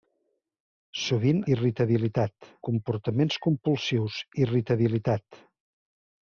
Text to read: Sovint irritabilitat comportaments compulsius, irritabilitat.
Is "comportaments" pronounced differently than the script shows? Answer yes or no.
no